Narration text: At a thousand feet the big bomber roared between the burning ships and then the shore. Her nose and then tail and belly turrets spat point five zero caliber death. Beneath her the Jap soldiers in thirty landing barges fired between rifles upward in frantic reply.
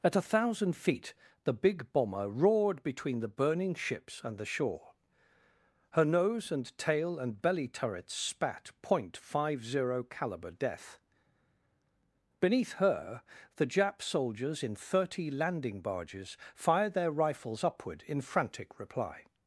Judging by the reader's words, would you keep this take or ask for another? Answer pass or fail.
fail